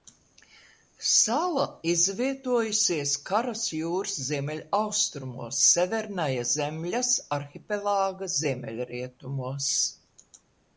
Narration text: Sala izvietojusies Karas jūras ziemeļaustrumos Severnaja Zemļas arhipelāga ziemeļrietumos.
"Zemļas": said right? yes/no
yes